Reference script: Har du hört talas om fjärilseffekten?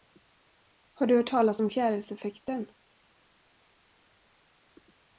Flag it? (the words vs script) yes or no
no